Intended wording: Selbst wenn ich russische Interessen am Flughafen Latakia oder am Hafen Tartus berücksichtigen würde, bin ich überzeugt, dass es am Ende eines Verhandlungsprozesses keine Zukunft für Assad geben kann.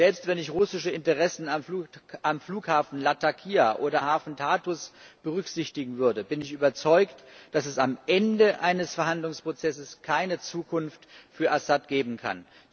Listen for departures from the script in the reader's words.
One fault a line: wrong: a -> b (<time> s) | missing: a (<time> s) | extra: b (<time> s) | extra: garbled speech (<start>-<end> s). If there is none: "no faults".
missing: am (4.0 s)